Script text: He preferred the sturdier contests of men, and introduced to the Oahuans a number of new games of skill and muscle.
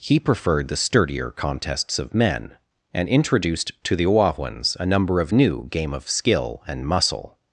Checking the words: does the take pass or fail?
fail